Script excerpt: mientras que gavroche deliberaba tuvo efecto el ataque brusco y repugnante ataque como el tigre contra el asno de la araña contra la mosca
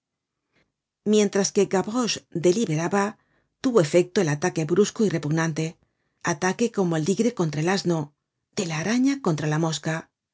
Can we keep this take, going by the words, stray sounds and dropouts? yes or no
yes